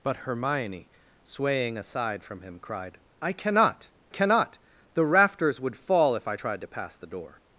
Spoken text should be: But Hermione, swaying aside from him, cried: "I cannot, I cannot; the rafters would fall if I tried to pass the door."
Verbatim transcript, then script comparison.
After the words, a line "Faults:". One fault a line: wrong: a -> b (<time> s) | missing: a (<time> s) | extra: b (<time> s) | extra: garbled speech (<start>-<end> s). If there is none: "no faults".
But Hermione, swaying aside from him, cried: "I cannot, cannot; the rafters would fall if I tried to pass the door."
Faults:
missing: I (3.9 s)